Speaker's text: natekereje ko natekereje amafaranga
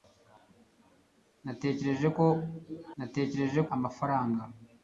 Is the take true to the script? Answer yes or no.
yes